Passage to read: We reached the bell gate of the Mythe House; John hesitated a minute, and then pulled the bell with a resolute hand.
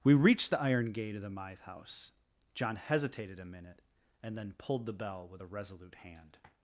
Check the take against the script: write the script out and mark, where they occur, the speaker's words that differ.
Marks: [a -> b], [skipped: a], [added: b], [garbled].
We reached the [bell -> iron] gate of the Mythe House; John hesitated a minute, and then pulled the bell with a resolute hand.